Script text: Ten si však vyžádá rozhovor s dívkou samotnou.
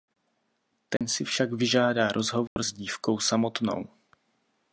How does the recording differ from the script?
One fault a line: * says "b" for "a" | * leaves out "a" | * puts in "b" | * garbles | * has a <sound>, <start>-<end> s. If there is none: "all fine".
* has a dropout, 1.0-1.0 s
* has a dropout, 2.5-2.6 s